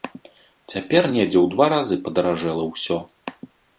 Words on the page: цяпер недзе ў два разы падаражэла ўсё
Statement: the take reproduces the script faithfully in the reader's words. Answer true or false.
true